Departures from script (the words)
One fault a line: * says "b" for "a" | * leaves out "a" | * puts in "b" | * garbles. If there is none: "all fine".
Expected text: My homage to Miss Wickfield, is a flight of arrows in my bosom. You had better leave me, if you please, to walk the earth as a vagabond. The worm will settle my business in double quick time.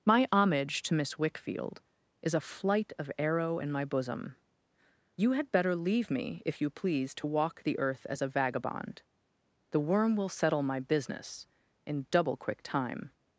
* says "arrow" for "arrows"